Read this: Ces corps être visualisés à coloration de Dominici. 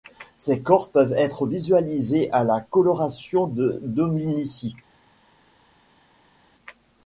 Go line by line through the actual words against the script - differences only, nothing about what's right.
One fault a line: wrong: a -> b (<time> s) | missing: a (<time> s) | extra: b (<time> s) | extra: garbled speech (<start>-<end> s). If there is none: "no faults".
extra: peuvent (0.9 s)
extra: la (2.4 s)